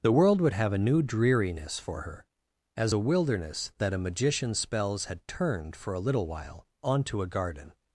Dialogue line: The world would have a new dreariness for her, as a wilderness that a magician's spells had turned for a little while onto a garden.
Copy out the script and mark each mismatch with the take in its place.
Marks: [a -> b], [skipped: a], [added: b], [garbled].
The world would have a new dreariness for her, as a wilderness that a magician's spells had turned for a little while onto a garden.